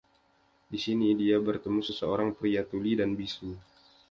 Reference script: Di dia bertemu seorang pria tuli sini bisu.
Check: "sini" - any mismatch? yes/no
yes